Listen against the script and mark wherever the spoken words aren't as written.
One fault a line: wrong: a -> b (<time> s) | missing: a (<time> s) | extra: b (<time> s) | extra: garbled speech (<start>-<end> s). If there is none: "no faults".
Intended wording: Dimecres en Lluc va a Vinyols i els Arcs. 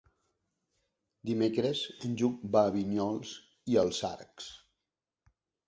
no faults